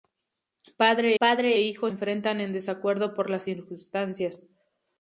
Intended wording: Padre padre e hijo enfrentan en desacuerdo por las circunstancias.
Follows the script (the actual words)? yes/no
yes